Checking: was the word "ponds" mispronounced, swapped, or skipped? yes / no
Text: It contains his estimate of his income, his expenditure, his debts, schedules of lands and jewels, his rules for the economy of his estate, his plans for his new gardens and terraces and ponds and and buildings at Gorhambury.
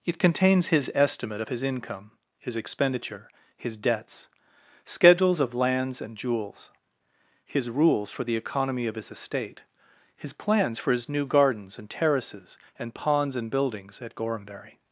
no